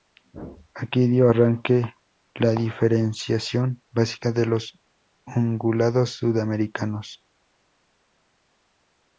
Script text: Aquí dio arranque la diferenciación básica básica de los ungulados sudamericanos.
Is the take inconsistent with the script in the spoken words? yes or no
yes